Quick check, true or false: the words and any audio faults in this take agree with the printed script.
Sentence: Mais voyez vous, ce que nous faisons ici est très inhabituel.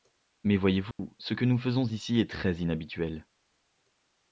false